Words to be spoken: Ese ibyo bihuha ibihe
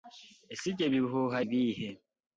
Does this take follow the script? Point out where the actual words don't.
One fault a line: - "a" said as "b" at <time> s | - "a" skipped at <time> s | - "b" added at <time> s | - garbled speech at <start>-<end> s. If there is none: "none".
none